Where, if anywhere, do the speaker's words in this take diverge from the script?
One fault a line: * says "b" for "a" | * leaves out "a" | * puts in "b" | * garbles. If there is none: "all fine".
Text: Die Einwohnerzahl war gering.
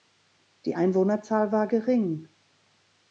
all fine